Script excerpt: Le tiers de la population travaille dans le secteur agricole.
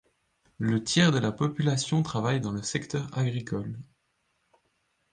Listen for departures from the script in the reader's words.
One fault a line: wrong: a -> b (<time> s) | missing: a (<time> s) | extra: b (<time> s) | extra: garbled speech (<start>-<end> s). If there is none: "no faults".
no faults